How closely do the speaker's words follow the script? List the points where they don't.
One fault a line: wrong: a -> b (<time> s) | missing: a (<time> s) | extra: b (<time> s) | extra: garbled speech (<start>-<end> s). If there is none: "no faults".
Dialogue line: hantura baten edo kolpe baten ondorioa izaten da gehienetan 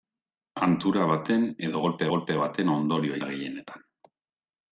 extra: kolpe (2.2 s)
missing: izaten (3.2 s)